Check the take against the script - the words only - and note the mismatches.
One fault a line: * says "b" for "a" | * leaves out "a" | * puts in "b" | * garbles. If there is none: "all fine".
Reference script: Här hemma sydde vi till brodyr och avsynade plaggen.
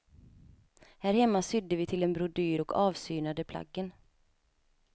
* puts in "en"